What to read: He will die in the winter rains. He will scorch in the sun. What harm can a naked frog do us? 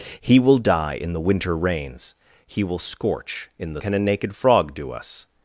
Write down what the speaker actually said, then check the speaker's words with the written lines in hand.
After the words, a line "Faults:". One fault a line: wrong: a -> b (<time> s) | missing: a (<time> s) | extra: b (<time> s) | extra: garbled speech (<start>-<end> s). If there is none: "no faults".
He will die in the winter rains. He will scorch in the can a naked frog do us?
Faults:
missing: sun What harm (3.8 s)